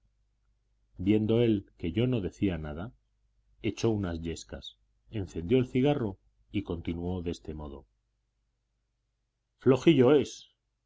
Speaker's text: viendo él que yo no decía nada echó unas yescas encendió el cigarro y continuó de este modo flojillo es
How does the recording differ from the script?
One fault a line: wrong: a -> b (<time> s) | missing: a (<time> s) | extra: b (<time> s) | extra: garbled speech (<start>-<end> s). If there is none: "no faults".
no faults